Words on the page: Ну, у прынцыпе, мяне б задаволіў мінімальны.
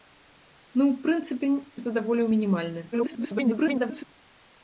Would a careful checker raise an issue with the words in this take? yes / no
yes